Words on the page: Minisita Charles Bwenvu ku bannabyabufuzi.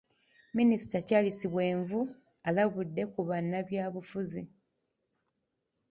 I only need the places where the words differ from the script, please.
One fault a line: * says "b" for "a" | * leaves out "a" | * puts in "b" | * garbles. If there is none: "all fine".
* puts in "alabudde"